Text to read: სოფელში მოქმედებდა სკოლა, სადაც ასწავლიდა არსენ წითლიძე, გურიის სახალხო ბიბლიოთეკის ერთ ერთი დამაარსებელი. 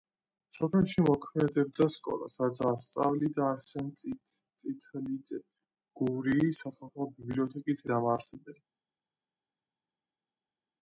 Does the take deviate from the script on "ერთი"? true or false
true